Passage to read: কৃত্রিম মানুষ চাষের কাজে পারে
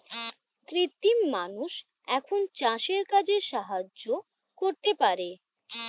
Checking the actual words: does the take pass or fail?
fail